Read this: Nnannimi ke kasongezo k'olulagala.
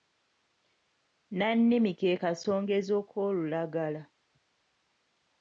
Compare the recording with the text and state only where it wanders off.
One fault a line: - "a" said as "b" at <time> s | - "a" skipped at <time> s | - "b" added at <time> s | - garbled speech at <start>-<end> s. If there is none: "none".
none